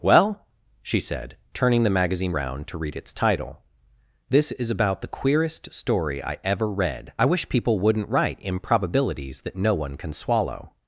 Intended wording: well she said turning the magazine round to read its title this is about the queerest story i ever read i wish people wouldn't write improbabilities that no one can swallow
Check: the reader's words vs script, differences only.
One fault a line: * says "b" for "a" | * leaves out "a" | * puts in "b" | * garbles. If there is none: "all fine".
all fine